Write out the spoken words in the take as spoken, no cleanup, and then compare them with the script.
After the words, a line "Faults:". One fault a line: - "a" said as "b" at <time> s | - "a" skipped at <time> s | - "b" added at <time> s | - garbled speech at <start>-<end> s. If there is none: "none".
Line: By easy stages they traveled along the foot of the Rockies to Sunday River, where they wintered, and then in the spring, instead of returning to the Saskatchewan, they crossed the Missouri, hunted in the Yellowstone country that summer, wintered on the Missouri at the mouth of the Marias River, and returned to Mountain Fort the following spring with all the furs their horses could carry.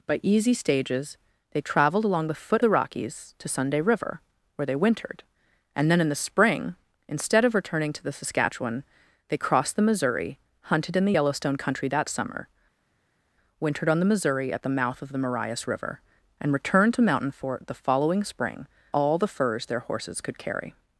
By easy stages they traveled along the foot the Rockies to Sunday River, where they wintered, and then in the spring, instead of returning to the Saskatchewan, they crossed the Missouri, hunted in the Yellowstone country that summer, wintered on the Missouri at the mouth of the Marias River, and returned to Mountain Fort the following spring all the furs their horses could carry.
Faults:
- "of" skipped at 2.6 s
- "with" skipped at 18.7 s